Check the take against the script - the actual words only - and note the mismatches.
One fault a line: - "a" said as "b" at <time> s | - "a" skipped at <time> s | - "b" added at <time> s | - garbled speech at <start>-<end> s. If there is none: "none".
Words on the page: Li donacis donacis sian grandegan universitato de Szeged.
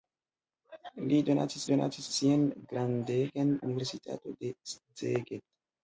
none